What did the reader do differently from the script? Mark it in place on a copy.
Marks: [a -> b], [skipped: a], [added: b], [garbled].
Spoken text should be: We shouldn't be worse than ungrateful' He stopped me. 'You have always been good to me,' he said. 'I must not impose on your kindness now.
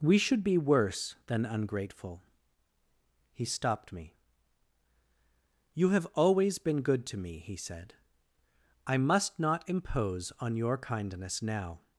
We [shouldn't -> should] be worse than ungrateful' He stopped me. 'You have always been good to me,' he said. 'I must not impose on your kindness now.